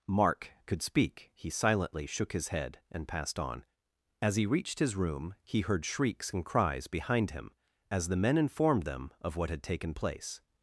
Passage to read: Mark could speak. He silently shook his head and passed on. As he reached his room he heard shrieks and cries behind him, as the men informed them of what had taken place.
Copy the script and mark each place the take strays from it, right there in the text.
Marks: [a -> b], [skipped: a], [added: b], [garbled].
Mark could speak. He silently shook his head and passed on. As he reached his room he heard shrieks and cries behind him, as the men informed them of what had taken place.